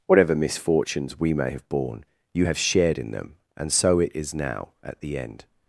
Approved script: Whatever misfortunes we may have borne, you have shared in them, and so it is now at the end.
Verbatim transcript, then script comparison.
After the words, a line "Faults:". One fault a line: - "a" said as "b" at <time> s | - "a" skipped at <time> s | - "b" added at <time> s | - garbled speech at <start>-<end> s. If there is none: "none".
Whatever misfortunes we may have borne, you have shared in them, and so it is now at the end.
Faults:
none